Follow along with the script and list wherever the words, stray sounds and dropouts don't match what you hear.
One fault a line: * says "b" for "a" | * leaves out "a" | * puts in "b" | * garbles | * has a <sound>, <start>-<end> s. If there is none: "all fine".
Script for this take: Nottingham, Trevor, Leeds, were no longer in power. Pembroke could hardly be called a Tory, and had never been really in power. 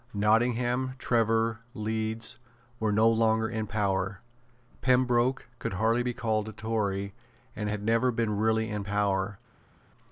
all fine